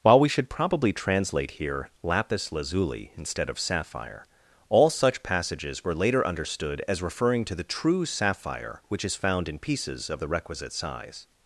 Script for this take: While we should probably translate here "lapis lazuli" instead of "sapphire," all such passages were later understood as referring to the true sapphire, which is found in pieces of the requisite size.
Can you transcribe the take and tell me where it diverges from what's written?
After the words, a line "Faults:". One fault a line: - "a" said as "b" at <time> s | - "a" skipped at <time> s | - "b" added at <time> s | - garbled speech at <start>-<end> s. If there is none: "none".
While we should probably translate here "lapis lazuli" instead of "sapphire," all such passages were later understood as referring to the true sapphire, which is found in pieces of the requisite size.
Faults:
none